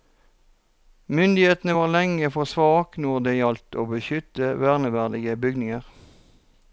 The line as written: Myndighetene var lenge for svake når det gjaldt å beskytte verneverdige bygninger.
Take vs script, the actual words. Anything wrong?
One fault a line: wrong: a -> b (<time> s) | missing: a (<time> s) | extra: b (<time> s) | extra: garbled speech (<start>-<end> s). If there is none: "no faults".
no faults